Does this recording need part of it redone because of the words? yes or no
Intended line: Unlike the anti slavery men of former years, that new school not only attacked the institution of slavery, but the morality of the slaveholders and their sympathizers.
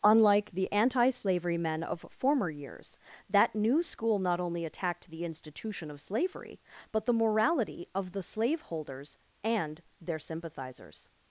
no